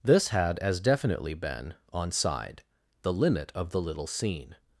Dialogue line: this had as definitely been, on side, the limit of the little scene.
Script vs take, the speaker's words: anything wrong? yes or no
no